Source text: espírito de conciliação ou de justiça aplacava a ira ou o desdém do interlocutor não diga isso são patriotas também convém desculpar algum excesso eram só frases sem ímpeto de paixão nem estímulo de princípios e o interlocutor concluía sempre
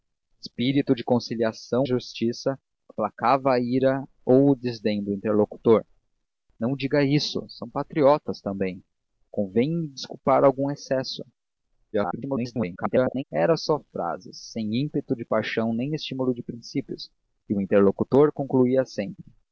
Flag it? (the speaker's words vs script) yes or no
yes